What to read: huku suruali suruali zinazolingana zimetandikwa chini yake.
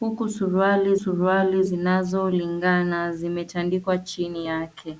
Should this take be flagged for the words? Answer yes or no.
no